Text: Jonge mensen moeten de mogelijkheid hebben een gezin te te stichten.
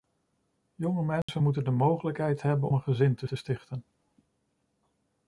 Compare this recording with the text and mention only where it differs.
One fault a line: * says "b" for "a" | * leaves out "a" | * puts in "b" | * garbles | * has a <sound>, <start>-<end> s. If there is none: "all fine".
* has a dropout, 1.2-1.3 s